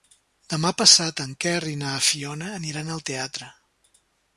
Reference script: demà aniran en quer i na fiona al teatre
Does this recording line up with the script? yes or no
no